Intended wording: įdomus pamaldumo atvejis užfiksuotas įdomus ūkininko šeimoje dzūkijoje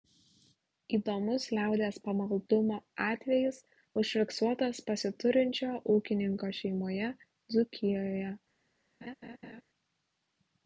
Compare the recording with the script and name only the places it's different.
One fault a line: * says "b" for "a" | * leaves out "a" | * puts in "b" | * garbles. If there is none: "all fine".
* puts in "liaudies"
* says "pasiturinčio" for "įdomus"